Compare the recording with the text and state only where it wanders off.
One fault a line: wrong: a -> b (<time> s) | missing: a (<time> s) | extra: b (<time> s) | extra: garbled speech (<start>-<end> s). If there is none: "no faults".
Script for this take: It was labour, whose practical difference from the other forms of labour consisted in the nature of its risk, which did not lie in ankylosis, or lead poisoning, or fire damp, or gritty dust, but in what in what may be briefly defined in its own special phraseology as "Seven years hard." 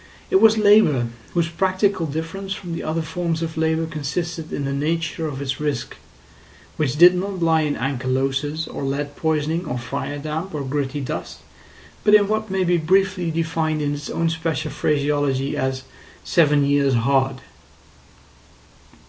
missing: in what (12.5 s)